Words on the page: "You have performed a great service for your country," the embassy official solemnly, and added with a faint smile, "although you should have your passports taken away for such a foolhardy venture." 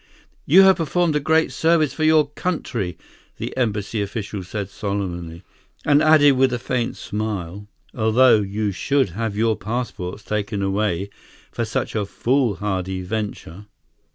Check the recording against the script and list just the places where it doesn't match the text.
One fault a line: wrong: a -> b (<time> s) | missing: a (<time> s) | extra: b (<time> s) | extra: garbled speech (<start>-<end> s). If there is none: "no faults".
extra: said (4.4 s)